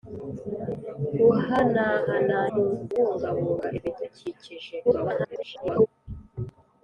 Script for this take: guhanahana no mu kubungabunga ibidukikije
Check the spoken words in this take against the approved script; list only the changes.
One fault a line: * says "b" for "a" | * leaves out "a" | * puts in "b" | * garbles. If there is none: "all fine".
* leaves out "no"
* garbles